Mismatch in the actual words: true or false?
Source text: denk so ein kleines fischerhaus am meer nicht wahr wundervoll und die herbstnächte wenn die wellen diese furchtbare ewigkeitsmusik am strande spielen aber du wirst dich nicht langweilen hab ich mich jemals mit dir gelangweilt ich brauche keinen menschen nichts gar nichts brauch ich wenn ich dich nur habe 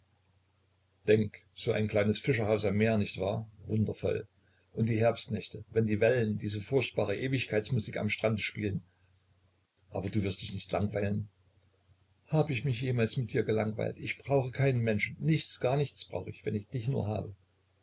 false